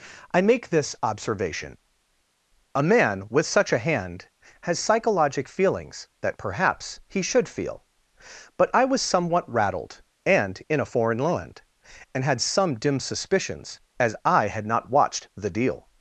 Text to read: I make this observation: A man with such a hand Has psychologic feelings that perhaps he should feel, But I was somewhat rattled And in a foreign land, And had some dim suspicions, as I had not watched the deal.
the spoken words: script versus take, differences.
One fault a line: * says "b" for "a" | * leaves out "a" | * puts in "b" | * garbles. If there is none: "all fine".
all fine